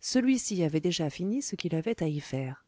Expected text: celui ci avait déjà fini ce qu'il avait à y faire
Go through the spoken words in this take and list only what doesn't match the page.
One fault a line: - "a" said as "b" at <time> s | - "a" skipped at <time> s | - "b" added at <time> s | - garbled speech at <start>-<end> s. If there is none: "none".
none